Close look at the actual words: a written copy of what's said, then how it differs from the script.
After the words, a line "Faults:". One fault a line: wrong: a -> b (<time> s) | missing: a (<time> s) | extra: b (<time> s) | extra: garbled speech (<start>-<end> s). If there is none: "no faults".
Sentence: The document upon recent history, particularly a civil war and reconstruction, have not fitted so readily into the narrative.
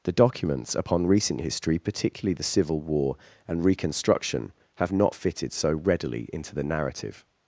The documents upon recent history, particularly the civil war and reconstruction, have not fitted so readily into the narrative.
Faults:
wrong: document -> documents (0.1 s)
wrong: a -> the (2.3 s)